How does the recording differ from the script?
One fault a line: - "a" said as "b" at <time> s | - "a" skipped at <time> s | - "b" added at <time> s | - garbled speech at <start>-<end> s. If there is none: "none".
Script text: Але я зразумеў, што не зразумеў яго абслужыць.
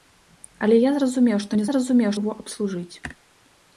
none